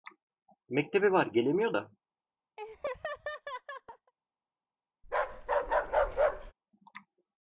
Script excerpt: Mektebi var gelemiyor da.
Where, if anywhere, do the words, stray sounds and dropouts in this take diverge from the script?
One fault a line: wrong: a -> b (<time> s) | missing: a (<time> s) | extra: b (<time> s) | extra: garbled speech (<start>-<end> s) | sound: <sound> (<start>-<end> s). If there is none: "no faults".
sound: laugh (2.6-4.1 s)
sound: bark (5.0-6.5 s)